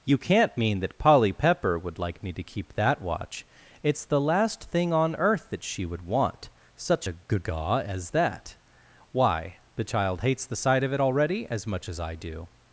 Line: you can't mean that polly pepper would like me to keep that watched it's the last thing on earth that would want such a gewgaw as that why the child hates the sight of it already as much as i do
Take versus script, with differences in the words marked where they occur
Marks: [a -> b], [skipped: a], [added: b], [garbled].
you can't mean that polly pepper would like me to keep that [watched -> watch] it's the last thing on earth that [added: she] would want such a gewgaw as that why the child hates the sight of it already as much as i do